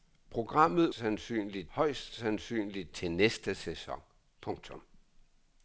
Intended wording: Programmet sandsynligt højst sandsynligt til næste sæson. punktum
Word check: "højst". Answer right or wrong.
right